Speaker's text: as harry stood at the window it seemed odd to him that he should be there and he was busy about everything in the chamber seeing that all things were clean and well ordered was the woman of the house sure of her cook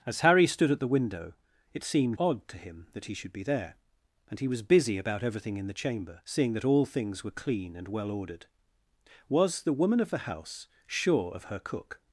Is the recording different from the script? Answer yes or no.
no